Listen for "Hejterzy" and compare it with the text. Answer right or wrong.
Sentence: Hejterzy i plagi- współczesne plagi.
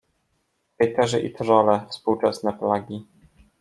right